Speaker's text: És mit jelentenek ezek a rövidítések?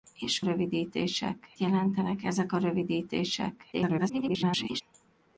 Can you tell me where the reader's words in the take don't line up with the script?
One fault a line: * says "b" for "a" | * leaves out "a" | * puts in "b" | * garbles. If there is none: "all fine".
* says "rövidítések" for "mit"
* garbles